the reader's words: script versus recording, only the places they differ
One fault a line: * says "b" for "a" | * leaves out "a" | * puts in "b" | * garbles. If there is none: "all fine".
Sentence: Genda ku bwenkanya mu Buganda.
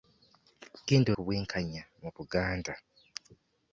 all fine